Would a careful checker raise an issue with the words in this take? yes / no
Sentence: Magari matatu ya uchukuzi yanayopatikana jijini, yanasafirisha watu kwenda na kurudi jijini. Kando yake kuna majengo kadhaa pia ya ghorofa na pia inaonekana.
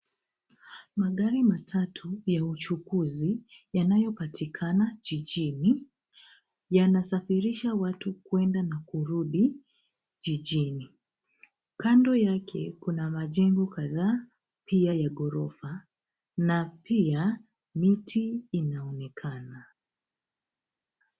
yes